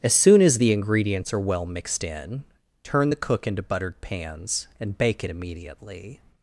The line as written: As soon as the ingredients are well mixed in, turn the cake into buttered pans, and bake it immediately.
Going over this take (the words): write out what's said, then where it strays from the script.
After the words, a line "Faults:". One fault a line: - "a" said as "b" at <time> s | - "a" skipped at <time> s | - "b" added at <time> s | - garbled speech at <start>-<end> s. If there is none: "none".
As soon as the ingredients are well mixed in, turn the cook into buttered pans, and bake it immediately.
Faults:
- "cake" said as "cook" at 3.2 s